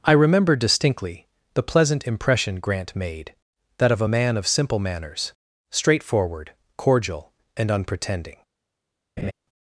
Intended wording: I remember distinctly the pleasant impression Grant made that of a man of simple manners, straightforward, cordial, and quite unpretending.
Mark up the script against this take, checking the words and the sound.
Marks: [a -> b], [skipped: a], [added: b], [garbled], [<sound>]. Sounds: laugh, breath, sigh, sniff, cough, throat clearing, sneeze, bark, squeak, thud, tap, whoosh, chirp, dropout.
I remember distinctly the pleasant impression Grant made that of a man of simple manners, straightforward, cordial, and [skipped: quite] unpretending. [laugh]